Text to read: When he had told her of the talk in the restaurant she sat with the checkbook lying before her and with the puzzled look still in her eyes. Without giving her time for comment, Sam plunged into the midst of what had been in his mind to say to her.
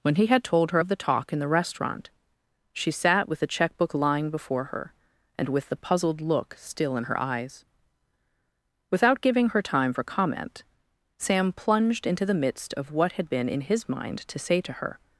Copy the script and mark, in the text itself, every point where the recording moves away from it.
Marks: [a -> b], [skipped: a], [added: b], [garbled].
When he had told her of the talk in the restaurant she sat with the checkbook lying before her and with the puzzled look still in her eyes. Without giving her time for comment, Sam plunged into the midst of what had been in his mind to say to her.